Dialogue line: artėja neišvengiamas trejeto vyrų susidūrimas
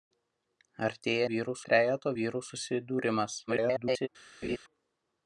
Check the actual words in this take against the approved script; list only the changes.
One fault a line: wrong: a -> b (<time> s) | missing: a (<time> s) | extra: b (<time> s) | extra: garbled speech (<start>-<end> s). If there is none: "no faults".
wrong: neišvengiamas -> vyrų (1.3 s)
extra: garbled speech (3.5-4.1 s)